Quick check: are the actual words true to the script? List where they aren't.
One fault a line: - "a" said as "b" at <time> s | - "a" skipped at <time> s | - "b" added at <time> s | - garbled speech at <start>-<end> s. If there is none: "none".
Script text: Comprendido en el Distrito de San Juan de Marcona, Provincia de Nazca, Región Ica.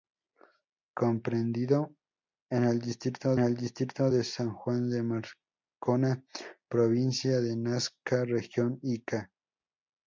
- "el Distrito" added at 3.4 s